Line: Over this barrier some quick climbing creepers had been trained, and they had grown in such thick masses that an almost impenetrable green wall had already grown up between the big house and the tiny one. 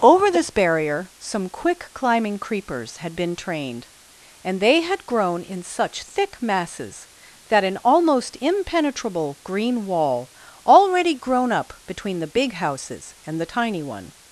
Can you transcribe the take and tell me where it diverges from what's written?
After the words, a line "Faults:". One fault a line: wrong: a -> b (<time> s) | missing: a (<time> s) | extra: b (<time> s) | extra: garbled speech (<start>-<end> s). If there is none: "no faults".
Over this barrier some quick climbing creepers had been trained, and they had grown in such thick masses that an almost impenetrable green wall already grown up between the big houses and the tiny one.
Faults:
missing: had (10.3 s)
wrong: house -> houses (12.5 s)